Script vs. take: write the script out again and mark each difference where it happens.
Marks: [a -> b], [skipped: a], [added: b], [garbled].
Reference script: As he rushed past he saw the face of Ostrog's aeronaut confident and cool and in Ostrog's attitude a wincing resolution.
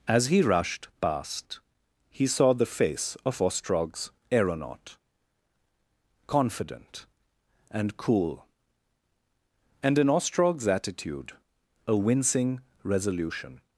As he rushed past he saw the face of Ostrog's aeronaut confident and cool and in Ostrog's attitude a wincing resolution.